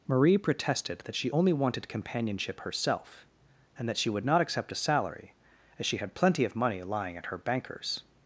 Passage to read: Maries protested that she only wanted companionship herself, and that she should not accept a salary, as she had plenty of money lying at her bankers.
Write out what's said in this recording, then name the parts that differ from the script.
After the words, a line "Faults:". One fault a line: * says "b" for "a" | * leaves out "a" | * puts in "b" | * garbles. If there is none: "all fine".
Marie protested that she only wanted companionship herself, and that she would not accept a salary, as she had plenty of money lying at her bankers.
Faults:
* says "Marie" for "Maries"
* says "would" for "should"